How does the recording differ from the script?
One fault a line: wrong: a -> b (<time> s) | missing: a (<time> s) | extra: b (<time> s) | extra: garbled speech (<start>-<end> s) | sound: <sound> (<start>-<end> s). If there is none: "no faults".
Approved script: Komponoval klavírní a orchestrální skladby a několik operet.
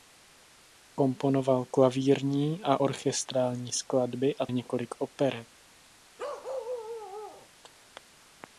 sound: bark (6.2-7.5 s)